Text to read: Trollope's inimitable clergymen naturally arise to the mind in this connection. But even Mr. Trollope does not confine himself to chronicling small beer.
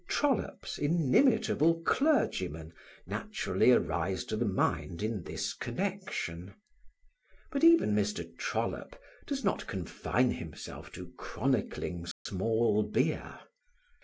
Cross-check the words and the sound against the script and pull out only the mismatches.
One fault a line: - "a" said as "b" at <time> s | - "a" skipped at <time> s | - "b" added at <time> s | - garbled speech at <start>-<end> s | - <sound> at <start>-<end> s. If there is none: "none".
- dropout at 12.1-12.3 s